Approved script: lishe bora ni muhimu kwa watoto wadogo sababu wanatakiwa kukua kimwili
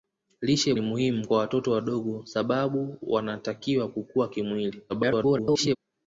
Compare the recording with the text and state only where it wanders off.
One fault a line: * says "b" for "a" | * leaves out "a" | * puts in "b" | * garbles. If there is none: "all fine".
* leaves out "bora"
* garbles